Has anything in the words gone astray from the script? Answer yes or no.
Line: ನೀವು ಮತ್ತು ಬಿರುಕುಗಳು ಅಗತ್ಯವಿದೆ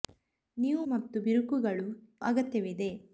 no